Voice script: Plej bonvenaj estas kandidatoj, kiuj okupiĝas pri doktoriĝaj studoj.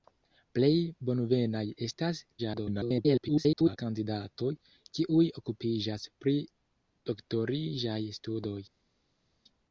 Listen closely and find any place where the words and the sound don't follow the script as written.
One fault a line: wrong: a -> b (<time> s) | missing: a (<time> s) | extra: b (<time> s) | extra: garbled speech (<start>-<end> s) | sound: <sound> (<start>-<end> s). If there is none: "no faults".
extra: garbled speech (2.4-3.8 s)